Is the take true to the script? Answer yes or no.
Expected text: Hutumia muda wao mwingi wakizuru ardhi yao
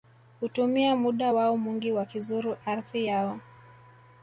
yes